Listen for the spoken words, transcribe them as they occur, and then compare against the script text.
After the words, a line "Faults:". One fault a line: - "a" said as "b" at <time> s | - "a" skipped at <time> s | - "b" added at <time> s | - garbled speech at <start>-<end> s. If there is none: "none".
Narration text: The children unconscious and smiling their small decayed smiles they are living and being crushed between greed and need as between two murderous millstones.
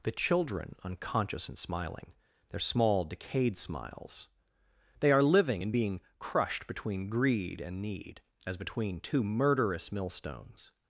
The children unconscious and smiling their small decayed smiles they are living and being crushed between greed and need as between two murderous millstones.
Faults:
none